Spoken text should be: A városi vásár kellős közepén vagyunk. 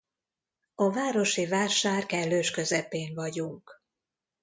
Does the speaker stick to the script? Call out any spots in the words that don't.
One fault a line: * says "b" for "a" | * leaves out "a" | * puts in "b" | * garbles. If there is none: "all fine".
all fine